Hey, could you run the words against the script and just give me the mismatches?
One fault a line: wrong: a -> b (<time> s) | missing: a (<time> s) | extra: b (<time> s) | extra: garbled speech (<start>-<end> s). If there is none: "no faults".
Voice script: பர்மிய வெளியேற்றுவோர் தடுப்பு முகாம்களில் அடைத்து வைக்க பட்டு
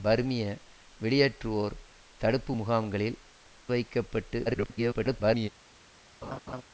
missing: அடைத்து (3.2 s)
extra: garbled speech (4.5-5.5 s)